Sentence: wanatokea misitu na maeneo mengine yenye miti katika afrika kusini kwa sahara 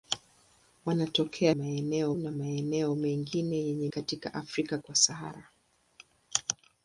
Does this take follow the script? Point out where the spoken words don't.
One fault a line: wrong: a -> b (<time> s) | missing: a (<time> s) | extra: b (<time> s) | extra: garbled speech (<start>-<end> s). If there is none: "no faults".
wrong: misitu -> maeneo (1.5 s)
missing: miti (3.9 s)
missing: kusini (4.8 s)